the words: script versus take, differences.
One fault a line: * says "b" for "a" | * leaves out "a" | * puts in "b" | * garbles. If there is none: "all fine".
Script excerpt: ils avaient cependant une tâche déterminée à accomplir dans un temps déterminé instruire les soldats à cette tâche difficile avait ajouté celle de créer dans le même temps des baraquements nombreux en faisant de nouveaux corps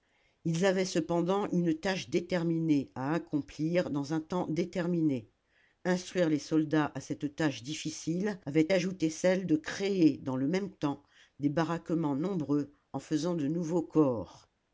all fine